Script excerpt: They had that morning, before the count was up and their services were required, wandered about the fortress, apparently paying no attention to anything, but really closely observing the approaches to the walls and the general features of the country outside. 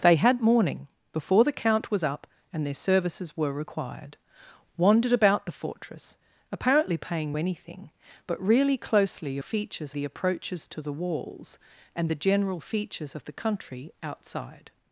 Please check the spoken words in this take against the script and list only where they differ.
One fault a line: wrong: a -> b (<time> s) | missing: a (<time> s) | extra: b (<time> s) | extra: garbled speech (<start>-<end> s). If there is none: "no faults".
missing: that (0.4 s)
missing: no attention to (7.4 s)
wrong: observing -> features (9.4 s)